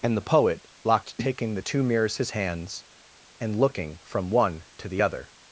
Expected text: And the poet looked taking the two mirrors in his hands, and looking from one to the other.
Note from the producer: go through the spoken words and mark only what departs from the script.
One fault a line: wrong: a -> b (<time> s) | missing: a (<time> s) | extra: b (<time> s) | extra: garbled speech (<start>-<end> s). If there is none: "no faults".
wrong: looked -> locked (0.8 s)
missing: in (2.2 s)